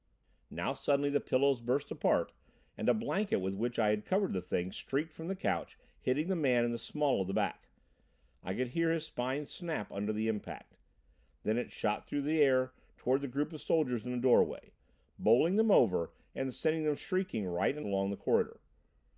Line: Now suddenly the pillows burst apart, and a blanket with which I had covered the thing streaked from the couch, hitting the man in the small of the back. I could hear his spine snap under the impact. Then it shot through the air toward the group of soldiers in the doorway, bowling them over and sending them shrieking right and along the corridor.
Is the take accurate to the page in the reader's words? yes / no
yes